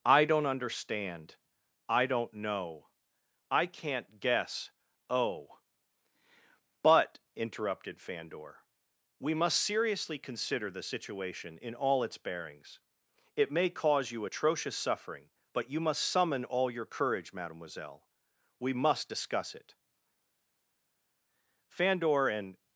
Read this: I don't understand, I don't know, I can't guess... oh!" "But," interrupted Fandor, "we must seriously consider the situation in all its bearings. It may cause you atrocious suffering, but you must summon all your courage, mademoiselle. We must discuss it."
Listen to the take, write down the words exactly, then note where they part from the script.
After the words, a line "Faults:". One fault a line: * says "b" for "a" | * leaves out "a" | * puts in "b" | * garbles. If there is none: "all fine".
I don't understand, I don't know, I can't guess... oh!" "But," interrupted Fandor, "we must seriously consider the situation in all its bearings. It may cause you atrocious suffering, but you must summon all your courage, mademoiselle. We must discuss it." Fandor and
Faults:
* puts in "Fandor and"